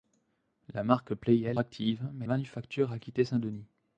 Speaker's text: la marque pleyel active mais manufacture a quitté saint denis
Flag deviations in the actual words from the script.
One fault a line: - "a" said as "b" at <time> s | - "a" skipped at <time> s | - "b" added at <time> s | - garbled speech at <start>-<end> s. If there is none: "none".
none